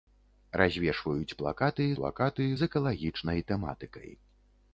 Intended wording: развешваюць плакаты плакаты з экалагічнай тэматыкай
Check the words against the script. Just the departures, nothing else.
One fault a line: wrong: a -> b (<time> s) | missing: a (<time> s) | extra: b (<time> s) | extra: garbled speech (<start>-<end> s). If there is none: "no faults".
no faults